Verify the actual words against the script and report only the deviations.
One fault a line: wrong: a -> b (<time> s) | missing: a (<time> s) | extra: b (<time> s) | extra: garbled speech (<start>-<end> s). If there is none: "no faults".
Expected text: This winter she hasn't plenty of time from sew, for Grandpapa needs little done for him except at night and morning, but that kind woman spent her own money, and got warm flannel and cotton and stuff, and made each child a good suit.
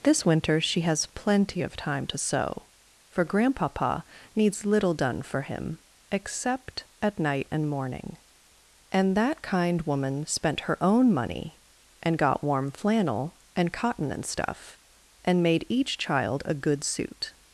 wrong: hasn't -> has (0.8 s)
wrong: from -> to (2.1 s)
wrong: but -> and (8.9 s)